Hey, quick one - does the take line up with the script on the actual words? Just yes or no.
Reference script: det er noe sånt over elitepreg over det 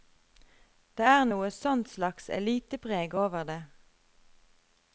no